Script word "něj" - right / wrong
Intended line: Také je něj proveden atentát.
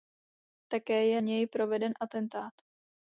right